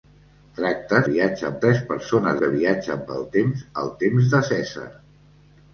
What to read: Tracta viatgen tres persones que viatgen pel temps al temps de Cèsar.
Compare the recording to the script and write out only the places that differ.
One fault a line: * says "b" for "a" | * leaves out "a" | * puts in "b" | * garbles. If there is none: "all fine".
all fine